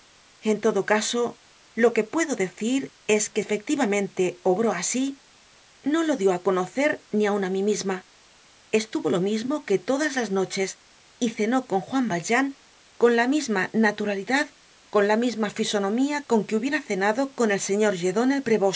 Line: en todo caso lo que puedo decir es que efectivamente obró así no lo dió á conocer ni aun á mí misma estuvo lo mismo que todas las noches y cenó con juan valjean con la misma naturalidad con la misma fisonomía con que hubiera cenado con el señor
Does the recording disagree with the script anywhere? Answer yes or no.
no